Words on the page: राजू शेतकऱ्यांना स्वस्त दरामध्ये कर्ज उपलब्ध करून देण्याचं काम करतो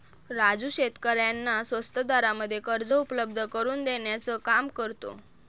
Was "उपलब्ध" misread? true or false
false